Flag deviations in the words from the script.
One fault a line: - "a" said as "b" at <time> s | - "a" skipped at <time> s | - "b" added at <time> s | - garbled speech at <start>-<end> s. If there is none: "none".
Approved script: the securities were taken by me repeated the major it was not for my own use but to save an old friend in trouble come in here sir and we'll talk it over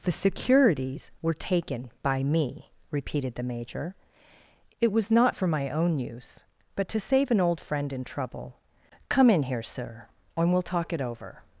none